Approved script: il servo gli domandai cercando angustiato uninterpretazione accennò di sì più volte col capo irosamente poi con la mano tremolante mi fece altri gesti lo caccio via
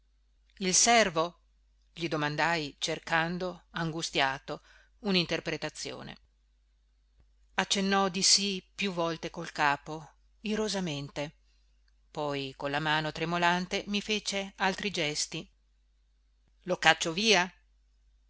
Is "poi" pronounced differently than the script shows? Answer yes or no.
no